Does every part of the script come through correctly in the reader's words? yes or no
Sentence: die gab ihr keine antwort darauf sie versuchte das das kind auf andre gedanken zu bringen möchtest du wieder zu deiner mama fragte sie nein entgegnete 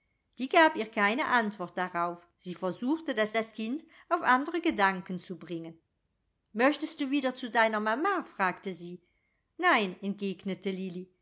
yes